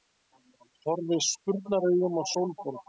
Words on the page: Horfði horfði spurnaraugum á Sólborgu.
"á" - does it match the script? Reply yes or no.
yes